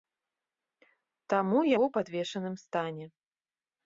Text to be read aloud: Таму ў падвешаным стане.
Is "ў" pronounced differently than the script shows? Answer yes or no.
no